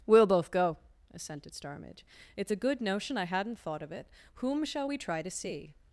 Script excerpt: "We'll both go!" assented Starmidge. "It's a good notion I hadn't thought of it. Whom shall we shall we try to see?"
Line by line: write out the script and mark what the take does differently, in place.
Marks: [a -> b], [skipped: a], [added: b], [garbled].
"We'll both go!" assented Starmidge. "It's a good notion I hadn't thought of it. Whom shall we [skipped: shall we] try to see?"